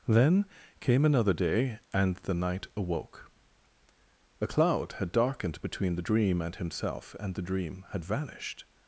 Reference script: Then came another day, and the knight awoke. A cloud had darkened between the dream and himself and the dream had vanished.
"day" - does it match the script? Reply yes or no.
yes